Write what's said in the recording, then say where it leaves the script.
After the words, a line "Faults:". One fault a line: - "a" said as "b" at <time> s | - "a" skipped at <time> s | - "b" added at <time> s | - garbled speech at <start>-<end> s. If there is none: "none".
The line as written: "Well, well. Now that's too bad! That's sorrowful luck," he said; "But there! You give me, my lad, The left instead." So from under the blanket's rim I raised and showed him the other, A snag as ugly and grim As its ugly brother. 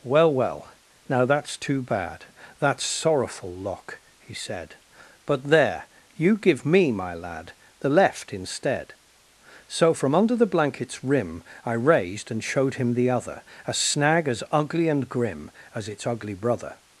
"Well, well. Now that's too bad! That's sorrowful lock," he said; "But there! You give me, my lad, The left instead." So from under the blanket's rim I raised and showed him the other, A snag as ugly and grim As its ugly brother.
Faults:
- "luck" said as "lock" at 3.5 s